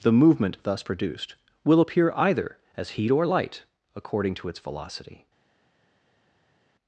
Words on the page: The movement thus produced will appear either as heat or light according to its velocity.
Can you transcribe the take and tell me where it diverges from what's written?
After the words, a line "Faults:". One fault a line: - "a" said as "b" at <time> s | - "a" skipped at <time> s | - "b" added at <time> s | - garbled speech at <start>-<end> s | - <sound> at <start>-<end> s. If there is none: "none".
The movement thus produced will appear either as heat or light according to its velocity.
Faults:
none